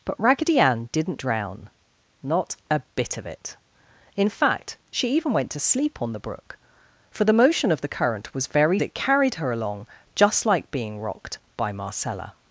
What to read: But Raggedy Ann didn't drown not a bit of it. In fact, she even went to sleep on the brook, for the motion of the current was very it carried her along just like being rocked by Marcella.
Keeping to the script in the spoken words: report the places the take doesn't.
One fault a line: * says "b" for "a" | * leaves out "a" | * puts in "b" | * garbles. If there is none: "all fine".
all fine